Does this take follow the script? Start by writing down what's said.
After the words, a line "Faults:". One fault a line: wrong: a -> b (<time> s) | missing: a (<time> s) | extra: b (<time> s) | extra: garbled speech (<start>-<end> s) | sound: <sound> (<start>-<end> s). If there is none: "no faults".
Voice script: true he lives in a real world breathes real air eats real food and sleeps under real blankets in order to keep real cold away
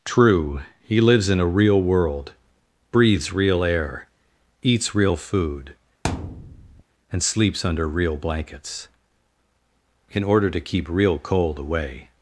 true he lives in a real world breathes real air eats real food and sleeps under real blankets in order to keep real cold away
Faults:
sound: thud (6.0-6.8 s)